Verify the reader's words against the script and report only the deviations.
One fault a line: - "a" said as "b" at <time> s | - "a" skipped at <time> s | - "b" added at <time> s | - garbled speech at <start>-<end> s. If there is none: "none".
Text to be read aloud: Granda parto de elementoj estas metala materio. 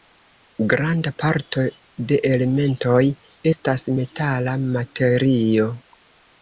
none